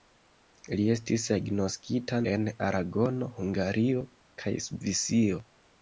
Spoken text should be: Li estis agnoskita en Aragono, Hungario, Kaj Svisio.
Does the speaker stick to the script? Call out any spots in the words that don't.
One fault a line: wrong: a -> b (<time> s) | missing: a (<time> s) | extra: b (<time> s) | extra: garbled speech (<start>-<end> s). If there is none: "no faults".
no faults